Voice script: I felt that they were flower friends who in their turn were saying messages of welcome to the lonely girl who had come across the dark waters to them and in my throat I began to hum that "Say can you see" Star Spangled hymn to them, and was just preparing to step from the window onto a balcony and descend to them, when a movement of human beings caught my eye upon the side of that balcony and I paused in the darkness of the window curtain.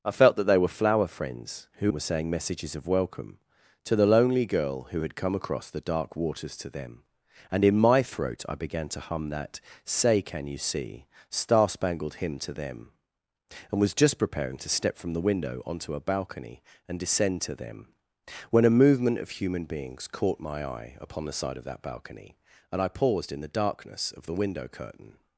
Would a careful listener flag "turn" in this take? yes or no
yes